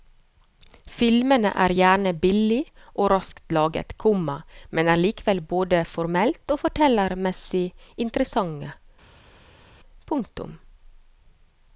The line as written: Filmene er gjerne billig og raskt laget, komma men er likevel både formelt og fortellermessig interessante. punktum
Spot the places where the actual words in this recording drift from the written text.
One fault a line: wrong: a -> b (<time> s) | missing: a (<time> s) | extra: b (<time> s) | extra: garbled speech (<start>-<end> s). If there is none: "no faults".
no faults